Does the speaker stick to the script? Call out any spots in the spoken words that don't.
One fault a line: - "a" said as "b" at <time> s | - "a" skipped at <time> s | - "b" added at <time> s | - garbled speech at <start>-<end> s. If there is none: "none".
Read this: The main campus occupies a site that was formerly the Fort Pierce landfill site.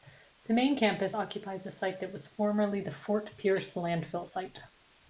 none